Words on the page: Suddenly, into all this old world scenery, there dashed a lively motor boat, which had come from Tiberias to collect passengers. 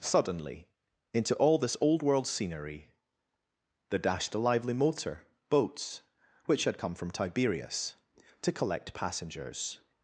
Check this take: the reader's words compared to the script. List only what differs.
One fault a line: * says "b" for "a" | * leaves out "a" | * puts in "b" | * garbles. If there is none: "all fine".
* says "boats" for "boat"